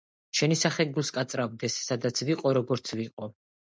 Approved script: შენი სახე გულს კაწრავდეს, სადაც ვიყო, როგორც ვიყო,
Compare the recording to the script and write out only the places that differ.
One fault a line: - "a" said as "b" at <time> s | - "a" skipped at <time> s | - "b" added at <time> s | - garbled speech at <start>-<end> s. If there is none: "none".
none